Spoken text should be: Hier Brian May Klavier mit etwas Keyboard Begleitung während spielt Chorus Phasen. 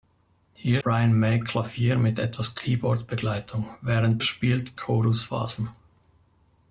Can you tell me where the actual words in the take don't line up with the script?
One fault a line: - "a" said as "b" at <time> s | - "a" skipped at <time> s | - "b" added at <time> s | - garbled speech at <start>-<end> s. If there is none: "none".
none